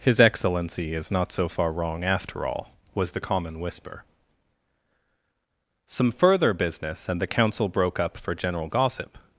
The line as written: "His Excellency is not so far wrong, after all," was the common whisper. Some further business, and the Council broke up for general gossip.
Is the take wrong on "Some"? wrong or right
right